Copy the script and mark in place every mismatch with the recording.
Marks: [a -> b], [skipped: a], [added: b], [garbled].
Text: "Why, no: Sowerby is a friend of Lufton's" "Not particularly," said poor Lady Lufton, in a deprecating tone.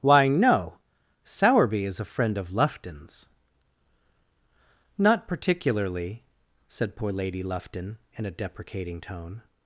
"Why, no: Sowerby is a friend of Lufton's" "Not particularly," said poor Lady Lufton, in a deprecating tone.